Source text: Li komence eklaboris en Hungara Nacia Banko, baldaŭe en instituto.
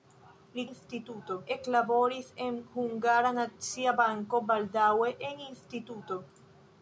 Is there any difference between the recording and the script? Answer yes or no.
yes